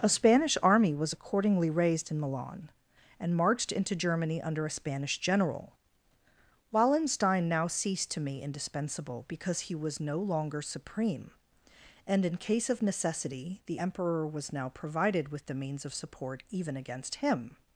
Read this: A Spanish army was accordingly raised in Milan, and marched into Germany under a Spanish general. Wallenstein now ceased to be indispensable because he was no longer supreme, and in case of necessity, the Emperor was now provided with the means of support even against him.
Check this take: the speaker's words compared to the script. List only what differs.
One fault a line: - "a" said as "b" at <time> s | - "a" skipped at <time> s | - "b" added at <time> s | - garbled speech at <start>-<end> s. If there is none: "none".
- "be" said as "me" at 8.2 s